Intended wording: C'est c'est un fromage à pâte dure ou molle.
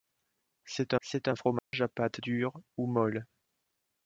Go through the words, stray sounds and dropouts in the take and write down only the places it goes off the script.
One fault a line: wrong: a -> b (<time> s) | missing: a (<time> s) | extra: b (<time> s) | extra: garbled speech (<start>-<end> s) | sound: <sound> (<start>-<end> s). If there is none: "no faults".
sound: dropout (1.6-1.7 s)